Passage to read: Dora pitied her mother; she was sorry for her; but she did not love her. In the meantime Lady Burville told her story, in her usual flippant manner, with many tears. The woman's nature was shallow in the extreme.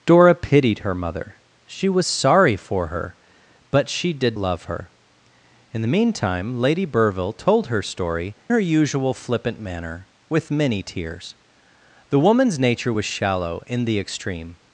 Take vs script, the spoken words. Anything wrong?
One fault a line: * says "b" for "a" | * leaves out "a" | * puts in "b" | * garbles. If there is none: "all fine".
* leaves out "not"
* leaves out "in"